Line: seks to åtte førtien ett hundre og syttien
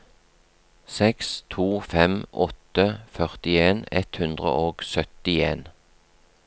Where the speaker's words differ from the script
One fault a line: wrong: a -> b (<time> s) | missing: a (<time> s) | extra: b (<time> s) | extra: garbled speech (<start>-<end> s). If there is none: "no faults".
extra: fem (1.9 s)